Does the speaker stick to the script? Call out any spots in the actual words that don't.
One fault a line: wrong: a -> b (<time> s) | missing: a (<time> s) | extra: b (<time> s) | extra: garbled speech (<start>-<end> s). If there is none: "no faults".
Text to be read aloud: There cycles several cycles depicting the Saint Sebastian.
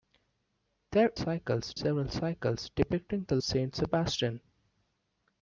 no faults